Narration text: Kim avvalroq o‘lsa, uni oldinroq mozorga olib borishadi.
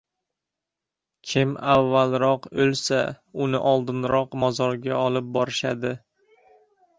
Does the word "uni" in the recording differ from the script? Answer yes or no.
no